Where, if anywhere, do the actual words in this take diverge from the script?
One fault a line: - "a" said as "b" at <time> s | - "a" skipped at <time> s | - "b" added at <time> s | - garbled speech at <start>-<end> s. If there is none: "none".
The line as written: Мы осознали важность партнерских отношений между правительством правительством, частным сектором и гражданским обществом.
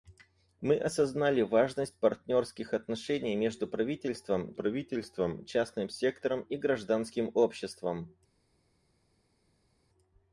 none